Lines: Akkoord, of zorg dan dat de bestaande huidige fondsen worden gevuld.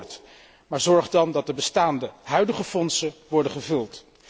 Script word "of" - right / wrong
wrong